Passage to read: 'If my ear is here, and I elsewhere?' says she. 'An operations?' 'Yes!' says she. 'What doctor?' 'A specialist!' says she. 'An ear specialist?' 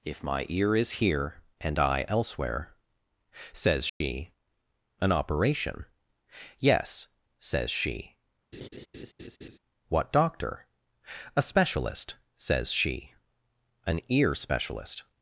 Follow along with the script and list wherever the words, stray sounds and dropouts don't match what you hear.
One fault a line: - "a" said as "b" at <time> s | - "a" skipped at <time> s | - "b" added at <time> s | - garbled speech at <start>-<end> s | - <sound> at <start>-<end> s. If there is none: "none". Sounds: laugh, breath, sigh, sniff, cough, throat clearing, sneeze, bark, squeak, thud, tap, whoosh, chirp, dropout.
- dropout at 3.9-4.0 s
- "operations" said as "operation" at 5.1 s
- laugh at 8.5-9.6 s